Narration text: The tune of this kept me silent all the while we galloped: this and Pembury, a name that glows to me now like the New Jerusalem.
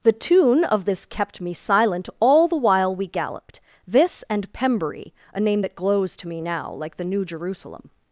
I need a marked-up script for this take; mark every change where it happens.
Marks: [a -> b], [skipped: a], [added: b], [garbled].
The tune of this kept me silent all the while we galloped: this and Pembury, a name that glows to me now like the New Jerusalem.